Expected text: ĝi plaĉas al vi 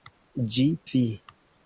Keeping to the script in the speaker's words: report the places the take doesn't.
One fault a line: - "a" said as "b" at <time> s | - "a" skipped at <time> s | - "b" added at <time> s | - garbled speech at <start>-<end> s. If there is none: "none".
- "plaĉas al" skipped at 0.7 s